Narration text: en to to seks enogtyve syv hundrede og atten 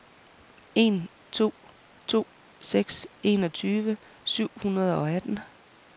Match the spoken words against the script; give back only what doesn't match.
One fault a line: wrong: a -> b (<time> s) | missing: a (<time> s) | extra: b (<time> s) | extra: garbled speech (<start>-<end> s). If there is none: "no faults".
no faults